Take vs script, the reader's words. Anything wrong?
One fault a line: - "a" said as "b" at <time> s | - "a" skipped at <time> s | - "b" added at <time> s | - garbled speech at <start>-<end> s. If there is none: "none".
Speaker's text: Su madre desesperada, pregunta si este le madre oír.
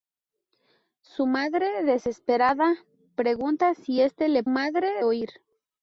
none